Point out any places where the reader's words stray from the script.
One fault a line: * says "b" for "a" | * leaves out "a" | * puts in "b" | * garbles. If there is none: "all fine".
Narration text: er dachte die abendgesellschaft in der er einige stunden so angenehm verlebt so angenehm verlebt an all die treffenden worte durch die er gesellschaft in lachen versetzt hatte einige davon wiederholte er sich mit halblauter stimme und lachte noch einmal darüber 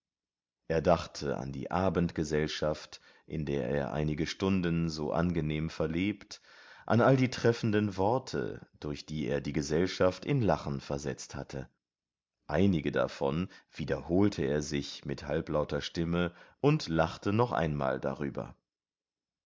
* puts in "an"
* leaves out "so angenehm verlebt"
* puts in "die"